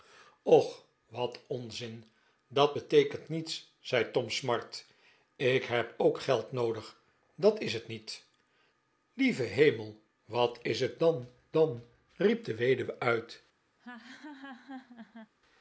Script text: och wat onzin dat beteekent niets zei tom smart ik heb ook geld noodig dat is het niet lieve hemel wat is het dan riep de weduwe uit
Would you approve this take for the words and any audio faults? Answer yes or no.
no